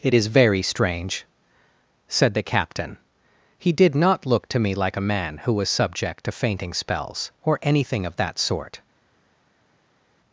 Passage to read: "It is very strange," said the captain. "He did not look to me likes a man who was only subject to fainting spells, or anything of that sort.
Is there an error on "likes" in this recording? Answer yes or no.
yes